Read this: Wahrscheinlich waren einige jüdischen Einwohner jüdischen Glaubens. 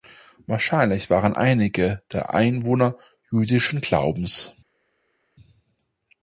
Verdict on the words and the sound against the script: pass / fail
fail